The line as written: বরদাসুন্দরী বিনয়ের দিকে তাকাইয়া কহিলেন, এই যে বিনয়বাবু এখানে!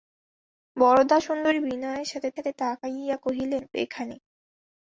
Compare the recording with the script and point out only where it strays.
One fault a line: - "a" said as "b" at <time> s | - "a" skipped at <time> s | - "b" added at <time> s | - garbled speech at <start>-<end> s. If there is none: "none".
- "দিকে" added at 2.4 s
- "এই যে বিনয়বাবু" skipped at 3.6 s